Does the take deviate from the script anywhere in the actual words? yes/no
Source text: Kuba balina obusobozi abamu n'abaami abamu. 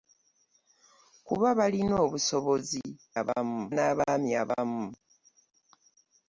no